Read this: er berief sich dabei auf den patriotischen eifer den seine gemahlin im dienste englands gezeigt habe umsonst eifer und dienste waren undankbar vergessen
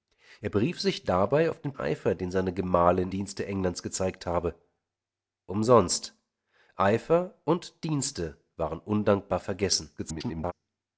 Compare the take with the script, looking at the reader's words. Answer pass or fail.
fail